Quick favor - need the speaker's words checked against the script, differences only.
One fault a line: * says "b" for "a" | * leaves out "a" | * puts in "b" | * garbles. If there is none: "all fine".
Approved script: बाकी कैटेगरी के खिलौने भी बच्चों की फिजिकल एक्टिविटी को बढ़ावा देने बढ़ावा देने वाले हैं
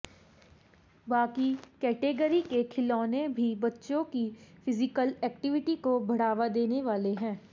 * leaves out "बढ़ावा देने"